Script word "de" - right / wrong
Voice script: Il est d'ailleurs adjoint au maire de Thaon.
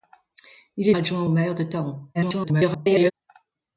right